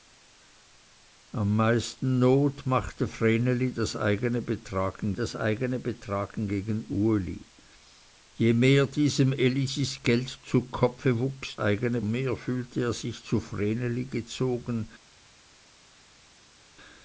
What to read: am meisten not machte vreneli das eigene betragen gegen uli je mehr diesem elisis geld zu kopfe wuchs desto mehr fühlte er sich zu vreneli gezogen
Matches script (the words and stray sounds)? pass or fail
fail